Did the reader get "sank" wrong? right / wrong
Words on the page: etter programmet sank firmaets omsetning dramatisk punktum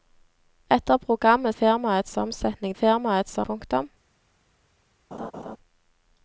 wrong